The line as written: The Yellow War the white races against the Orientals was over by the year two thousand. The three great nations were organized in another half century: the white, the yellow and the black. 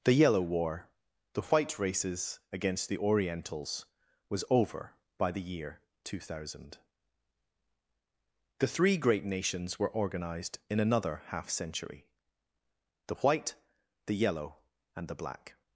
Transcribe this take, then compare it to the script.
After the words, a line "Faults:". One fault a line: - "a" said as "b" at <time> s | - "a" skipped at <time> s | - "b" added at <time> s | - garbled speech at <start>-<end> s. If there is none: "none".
The Yellow War the white races against the Orientals was over by the year two thousand. The three great nations were organized in another half century: the white, the yellow and the black.
Faults:
none